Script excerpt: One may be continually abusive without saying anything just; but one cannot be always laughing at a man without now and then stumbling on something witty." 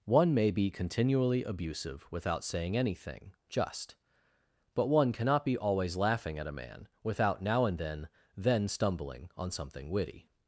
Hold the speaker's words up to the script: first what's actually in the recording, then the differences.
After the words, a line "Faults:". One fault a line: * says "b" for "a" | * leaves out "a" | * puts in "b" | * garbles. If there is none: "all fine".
One may be continually abusive without saying anything just; but one cannot be always laughing at a man without now and then then stumbling on something witty."
Faults:
* puts in "then"